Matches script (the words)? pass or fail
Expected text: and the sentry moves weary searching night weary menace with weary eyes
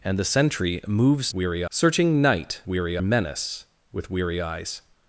pass